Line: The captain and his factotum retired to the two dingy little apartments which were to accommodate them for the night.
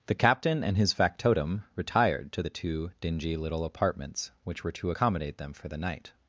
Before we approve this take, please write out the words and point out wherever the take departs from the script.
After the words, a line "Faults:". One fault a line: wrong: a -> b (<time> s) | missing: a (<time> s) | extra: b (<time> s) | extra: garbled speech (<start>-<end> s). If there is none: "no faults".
The captain and his factotum retired to the two dingy little apartments which were to accommodate them for the night.
Faults:
no faults